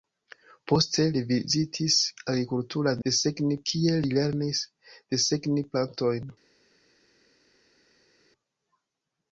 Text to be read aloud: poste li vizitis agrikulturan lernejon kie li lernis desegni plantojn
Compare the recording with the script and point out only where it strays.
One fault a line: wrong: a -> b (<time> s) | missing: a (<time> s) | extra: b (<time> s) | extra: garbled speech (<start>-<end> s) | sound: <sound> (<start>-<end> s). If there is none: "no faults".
wrong: lernejon -> desegni (3.1 s)